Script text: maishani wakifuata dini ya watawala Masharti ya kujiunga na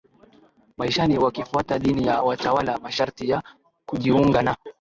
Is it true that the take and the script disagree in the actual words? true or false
false